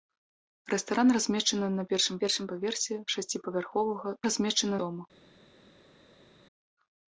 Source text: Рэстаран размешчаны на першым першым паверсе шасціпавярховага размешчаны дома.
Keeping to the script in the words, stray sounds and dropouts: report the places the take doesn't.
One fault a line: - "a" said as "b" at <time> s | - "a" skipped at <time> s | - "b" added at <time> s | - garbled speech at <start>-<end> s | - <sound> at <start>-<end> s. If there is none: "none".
none